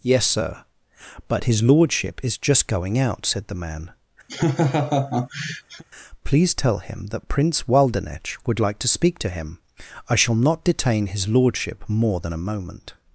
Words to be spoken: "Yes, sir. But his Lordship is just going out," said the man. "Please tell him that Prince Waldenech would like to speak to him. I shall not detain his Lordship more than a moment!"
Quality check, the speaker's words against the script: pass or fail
pass